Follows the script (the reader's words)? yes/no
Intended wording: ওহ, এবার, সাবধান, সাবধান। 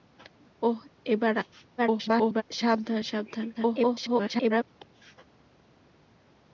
no